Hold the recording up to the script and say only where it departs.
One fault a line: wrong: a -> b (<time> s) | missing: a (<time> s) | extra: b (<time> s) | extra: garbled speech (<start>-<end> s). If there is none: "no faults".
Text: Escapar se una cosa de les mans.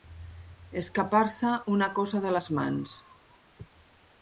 no faults